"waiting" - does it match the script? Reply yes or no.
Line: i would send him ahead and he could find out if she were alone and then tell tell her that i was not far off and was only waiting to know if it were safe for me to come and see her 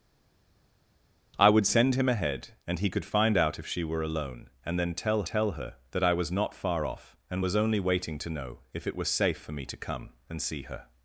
yes